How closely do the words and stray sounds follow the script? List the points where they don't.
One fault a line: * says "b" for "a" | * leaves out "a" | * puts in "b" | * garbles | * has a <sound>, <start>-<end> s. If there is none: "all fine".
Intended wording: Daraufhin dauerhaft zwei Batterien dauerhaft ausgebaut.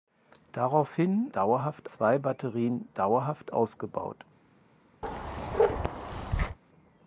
* has a bark, 5.0-6.6 s